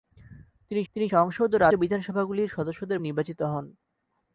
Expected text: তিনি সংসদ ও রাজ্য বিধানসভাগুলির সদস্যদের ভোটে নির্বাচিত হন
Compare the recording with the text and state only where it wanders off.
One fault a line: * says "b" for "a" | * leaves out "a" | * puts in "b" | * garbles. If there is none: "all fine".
* puts in "তিনি"
* leaves out "রাজ্য"
* leaves out "ভোটে"